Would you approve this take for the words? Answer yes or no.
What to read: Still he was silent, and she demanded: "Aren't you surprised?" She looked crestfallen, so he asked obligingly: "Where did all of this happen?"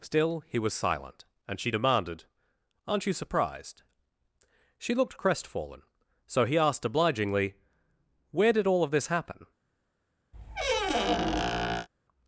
yes